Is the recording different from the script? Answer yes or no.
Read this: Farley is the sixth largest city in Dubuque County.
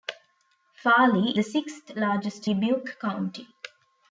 yes